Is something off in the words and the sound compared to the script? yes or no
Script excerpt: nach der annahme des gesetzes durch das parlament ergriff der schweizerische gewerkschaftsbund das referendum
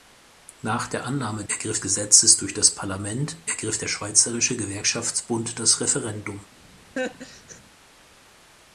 yes